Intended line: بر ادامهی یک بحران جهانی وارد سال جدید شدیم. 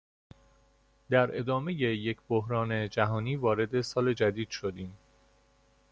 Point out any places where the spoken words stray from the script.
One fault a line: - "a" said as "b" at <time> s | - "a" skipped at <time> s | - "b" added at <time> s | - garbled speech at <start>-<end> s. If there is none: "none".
- "بر" said as "در" at 1.1 s